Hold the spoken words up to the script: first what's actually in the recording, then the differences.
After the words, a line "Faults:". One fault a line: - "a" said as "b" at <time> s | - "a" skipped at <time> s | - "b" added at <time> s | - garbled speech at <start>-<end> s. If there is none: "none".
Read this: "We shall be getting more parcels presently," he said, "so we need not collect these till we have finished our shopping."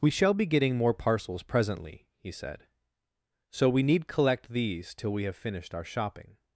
"We shall be getting more parcels presently," he said, "so we need collect these till we have finished our shopping."
Faults:
- "not" skipped at 4.1 s